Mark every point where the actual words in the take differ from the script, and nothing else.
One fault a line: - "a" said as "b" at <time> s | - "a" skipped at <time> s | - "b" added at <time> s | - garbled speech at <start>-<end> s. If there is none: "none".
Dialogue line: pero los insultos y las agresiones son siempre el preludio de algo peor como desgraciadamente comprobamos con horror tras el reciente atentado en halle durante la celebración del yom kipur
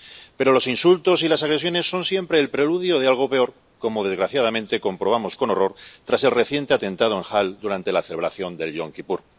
none